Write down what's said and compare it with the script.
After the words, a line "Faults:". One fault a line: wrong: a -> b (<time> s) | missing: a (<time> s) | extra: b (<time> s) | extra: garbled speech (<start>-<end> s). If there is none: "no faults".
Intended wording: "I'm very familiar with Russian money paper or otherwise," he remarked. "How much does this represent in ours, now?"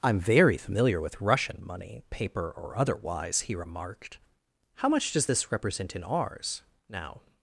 "I'm very familiar with Russian money paper or otherwise," he remarked. "How much does this represent in ours, now?"
Faults:
no faults